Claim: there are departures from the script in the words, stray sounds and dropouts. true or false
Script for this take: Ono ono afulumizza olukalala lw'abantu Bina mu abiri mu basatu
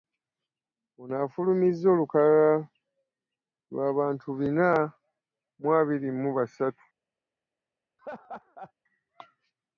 true